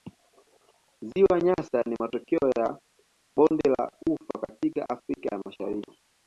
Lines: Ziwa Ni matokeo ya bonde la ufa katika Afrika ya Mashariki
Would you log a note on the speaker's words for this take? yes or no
yes